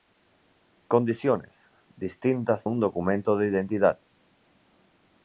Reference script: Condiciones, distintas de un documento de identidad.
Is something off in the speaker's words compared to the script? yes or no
yes